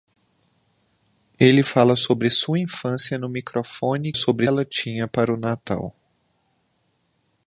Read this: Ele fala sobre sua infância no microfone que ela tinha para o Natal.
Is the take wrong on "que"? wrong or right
wrong